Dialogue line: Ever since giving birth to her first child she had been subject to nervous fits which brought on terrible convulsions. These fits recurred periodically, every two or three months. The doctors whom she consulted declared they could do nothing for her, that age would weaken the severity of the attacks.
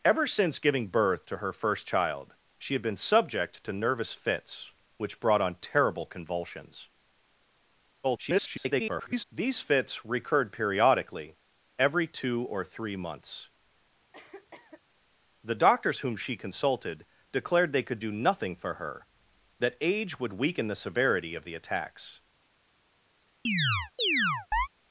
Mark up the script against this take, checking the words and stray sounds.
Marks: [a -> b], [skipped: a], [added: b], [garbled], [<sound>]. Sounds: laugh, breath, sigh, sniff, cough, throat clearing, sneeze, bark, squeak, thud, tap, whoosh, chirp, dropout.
Ever since giving birth to her first child she had been subject to nervous fits which brought on terrible convulsions. [garbled] These fits recurred periodically, every two or three months. [cough] The doctors whom she consulted declared they could do nothing for her, that age would weaken the severity of the attacks. [chirp]